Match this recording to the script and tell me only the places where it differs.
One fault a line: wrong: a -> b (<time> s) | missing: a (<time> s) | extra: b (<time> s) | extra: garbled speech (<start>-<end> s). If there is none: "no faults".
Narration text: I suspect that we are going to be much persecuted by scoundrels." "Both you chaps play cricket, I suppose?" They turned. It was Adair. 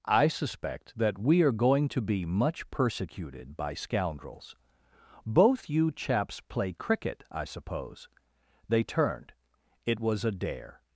no faults